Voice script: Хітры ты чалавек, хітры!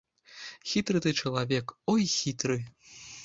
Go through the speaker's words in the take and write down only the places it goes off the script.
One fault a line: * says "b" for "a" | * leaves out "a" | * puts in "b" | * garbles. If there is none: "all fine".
* puts in "ой"